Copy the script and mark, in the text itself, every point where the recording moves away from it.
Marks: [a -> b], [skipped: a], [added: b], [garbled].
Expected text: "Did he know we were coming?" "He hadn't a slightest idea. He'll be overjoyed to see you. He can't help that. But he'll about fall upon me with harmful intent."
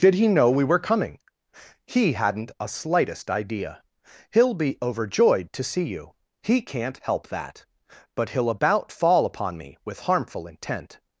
"Did he know we were coming?" "He hadn't a slightest idea. He'll be overjoyed to see you. He can't help that. But he'll about fall upon me with harmful intent."